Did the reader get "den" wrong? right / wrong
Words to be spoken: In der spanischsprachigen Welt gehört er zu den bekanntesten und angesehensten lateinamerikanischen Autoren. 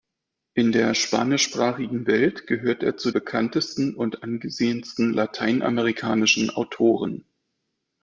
wrong